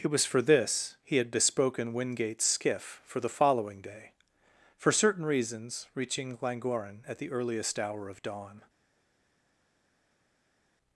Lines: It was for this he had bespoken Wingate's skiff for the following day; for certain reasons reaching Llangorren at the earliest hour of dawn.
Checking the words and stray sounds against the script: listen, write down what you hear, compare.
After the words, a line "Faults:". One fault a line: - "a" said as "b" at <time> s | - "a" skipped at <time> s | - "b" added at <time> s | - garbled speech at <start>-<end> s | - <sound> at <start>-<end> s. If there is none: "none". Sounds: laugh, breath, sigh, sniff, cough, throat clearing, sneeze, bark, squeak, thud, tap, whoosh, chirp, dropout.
It was for this he had bespoken Wingate's skiff for the following day; for certain reasons reaching Llangorren at the earliest hour of dawn.
Faults:
none